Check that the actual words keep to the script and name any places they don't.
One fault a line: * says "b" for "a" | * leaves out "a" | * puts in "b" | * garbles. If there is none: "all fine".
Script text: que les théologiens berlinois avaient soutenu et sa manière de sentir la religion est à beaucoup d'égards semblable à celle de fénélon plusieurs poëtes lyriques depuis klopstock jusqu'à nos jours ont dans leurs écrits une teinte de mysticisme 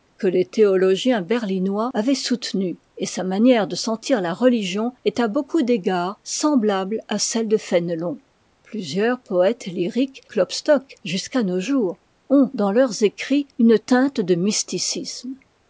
* leaves out "depuis"